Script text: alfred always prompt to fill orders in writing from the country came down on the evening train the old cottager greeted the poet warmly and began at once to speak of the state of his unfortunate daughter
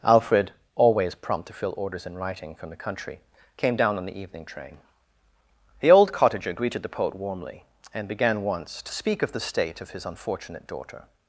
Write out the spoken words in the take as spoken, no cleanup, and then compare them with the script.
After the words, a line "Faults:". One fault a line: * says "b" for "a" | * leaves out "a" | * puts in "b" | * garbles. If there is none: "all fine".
alfred always prompt to fill orders in writing from the country came down on the evening train the old cottager greeted the poet warmly and began once to speak of the state of his unfortunate daughter
Faults:
* leaves out "at"